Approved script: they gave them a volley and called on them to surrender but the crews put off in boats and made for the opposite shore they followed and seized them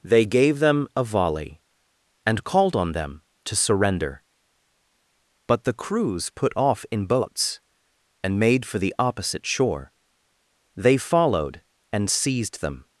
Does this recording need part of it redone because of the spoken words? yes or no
no